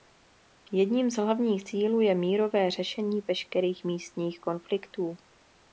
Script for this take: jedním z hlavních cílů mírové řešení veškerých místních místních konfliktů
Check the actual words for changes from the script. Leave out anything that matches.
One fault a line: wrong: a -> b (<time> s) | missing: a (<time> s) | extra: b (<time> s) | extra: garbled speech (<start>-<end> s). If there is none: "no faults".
extra: je (2.0 s)
missing: místních (4.4 s)